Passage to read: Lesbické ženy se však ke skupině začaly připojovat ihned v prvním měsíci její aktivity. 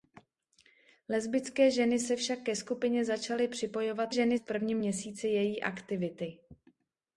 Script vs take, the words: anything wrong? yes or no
yes